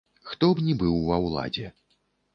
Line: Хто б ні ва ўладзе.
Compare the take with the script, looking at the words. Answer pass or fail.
fail